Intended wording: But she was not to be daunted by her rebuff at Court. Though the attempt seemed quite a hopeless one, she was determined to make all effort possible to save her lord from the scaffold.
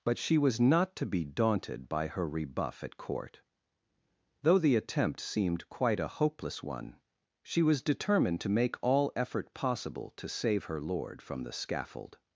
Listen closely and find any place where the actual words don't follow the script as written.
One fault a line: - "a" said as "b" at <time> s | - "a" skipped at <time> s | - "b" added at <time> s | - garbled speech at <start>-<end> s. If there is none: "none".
none